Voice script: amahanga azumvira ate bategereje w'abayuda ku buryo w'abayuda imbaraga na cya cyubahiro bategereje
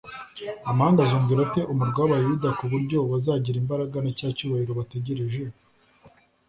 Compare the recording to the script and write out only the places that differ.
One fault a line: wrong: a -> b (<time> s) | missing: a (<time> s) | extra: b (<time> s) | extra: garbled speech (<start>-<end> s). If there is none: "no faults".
wrong: bategereje -> umurwa (1.7 s)
wrong: w'abayuda -> bazagira (3.1 s)